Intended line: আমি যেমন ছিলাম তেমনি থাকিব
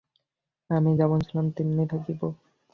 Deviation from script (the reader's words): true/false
false